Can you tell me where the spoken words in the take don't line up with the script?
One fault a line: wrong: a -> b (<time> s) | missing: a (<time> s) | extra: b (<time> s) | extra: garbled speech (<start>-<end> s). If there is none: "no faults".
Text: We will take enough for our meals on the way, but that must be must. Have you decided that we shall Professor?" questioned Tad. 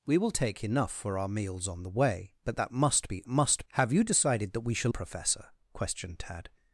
no faults